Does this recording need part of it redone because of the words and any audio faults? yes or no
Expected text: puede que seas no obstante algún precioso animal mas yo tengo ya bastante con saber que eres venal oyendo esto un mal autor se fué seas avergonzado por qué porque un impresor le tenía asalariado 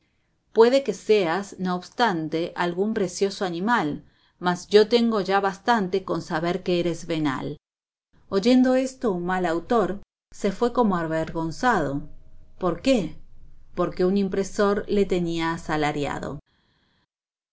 yes